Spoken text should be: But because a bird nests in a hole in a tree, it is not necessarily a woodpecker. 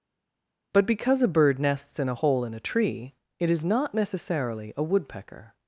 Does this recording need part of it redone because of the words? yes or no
no